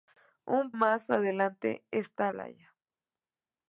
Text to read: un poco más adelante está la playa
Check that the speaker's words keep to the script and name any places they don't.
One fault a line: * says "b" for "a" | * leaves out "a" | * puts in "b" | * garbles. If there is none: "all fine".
* leaves out "poco"
* leaves out "la"